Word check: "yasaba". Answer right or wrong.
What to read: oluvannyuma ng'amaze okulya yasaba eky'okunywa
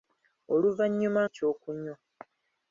wrong